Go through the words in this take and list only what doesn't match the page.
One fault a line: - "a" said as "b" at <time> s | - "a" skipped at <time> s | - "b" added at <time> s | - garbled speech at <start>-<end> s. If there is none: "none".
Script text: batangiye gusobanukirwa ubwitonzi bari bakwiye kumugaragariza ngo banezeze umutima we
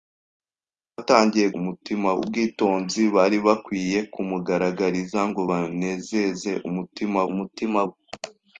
- "gusobanukirwa" said as "umutima" at 1.6 s
- "umutima" added at 7.3 s